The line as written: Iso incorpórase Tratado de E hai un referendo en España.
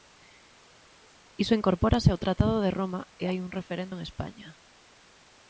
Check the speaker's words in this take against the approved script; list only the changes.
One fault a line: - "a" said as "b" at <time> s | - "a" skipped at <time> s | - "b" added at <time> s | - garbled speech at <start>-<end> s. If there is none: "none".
- "ao" added at 2.1 s
- "Roma" added at 2.8 s